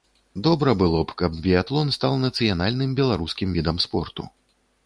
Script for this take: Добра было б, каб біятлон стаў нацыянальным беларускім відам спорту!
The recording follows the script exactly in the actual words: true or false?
true